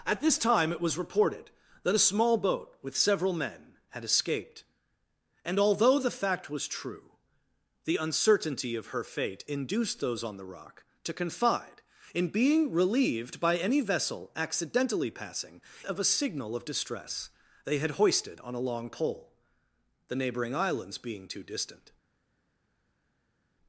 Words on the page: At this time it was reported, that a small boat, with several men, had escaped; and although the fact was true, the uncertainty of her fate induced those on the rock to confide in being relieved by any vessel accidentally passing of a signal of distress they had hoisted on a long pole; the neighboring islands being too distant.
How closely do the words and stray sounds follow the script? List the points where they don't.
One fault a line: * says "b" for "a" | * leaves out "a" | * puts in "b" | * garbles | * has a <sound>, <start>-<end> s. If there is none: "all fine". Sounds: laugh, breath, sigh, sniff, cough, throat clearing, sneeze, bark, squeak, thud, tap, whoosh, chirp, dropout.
all fine